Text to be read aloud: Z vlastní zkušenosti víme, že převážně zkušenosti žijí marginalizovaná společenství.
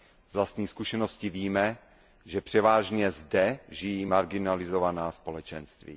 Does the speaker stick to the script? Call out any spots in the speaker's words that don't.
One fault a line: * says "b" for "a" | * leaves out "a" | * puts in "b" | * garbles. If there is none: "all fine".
* says "zde" for "zkušenosti"